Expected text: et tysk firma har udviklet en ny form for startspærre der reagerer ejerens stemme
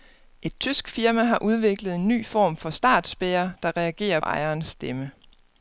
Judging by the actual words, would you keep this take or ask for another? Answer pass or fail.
pass